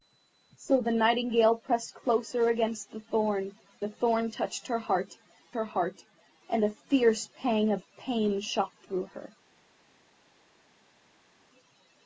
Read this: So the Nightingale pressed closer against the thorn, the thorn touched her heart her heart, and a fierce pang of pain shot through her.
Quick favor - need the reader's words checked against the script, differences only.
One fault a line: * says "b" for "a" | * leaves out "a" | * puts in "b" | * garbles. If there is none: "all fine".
all fine